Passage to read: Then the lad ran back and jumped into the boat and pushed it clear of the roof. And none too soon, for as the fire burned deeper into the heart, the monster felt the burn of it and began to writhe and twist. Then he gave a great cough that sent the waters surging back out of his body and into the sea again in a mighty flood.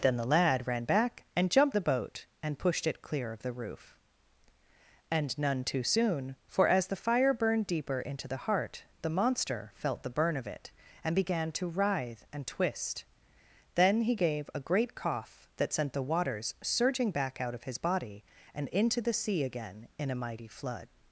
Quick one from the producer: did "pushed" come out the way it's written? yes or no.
yes